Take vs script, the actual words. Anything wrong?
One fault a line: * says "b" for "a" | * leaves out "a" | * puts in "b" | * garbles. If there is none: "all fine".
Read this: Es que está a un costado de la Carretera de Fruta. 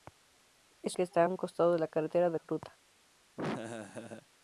all fine